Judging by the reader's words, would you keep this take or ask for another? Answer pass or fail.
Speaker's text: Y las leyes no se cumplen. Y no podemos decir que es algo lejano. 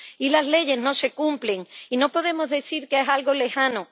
pass